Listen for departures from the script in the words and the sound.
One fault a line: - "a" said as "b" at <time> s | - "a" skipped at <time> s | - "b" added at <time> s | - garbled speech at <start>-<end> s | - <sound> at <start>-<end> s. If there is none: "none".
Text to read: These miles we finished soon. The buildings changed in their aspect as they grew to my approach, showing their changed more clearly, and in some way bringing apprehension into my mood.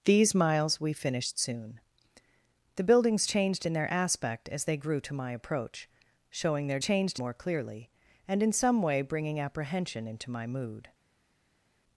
none